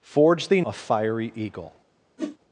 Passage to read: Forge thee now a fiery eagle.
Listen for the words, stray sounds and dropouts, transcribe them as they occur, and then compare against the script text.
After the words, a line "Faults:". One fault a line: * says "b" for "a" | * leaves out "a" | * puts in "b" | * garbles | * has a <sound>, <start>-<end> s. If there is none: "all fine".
Forge thee a fiery eagle.
Faults:
* leaves out "now"
* has a whoosh, 2.2-2.4 s